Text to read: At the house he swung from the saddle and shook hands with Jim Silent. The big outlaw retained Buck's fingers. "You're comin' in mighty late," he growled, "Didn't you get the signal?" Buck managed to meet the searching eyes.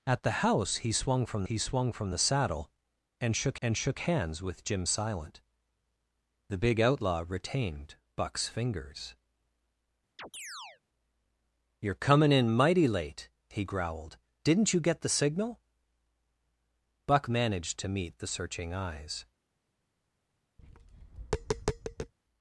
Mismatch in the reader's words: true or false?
true